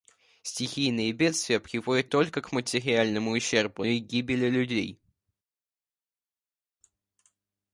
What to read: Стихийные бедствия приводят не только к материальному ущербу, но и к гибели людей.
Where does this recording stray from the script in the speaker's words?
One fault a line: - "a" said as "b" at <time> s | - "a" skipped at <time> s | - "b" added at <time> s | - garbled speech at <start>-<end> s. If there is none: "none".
- "не" skipped at 2.1 s
- "но" skipped at 3.8 s